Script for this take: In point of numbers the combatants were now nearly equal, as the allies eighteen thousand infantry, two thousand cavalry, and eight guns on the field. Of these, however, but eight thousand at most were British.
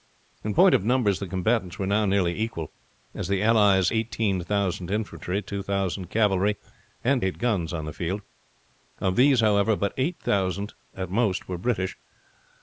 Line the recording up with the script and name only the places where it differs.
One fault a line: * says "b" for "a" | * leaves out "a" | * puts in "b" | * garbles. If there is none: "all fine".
all fine